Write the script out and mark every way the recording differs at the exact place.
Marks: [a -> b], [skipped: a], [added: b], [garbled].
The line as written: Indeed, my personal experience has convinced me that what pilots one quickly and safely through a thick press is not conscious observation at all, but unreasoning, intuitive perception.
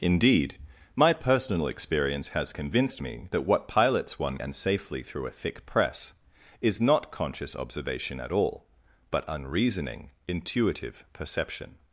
Indeed, my personal experience has convinced me that what pilots one [skipped: quickly] and safely through a thick press is not conscious observation at all, but unreasoning, intuitive perception.